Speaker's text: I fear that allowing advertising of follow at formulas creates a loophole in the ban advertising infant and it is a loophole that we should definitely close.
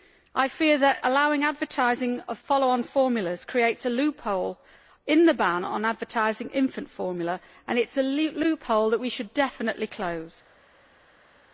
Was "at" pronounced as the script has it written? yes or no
no